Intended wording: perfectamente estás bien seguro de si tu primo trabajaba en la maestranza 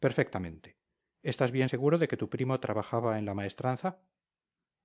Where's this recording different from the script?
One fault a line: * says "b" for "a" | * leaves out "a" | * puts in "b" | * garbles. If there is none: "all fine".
* says "que" for "si"